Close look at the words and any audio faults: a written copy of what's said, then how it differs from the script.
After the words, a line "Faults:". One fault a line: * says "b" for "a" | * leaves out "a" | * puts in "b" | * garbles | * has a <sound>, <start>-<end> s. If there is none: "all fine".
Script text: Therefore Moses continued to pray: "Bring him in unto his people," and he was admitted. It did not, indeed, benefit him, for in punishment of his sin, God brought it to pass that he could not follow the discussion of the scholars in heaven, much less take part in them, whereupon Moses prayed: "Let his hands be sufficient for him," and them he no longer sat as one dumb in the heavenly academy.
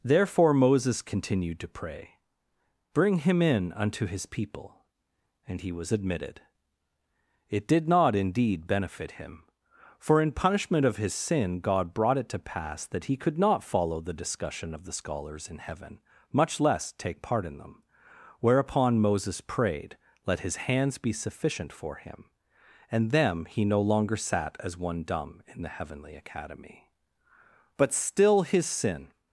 Therefore Moses continued to pray: "Bring him in unto his people," and he was admitted. It did not, indeed, benefit him, for in punishment of his sin, God brought it to pass that he could not follow the discussion of the scholars in heaven, much less take part in them, whereupon Moses prayed: "Let his hands be sufficient for him," and them he no longer sat as one dumb in the heavenly academy. But still his sin
Faults:
* puts in "But still his sin"